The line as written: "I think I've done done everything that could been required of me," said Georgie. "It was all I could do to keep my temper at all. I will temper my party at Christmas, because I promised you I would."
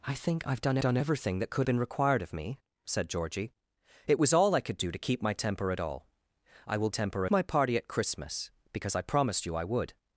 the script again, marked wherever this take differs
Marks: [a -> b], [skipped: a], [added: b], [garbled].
"I think I've done done everything that could been required of me," said Georgie. "It was all I could do to keep my temper at all. I will temper my party at Christmas, because I promised you I would."